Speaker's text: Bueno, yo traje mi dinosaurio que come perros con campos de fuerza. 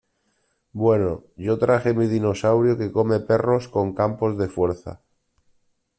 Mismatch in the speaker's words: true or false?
false